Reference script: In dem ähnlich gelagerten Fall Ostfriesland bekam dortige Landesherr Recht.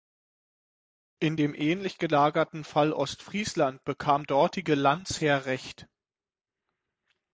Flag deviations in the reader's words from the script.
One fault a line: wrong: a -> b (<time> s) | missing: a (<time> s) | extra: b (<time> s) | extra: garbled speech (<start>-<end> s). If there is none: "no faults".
no faults